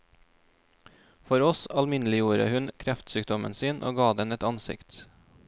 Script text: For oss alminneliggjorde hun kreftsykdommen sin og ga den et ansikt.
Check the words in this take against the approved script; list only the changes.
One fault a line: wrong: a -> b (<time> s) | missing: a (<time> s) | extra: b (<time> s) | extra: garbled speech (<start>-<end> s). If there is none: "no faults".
no faults